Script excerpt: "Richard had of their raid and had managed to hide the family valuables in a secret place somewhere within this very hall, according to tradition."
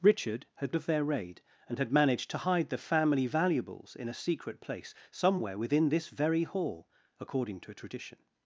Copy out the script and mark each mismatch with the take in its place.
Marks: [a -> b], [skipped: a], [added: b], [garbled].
"Richard had of their raid and had managed to hide the family valuables in a secret place somewhere within this very hall, according to tradition."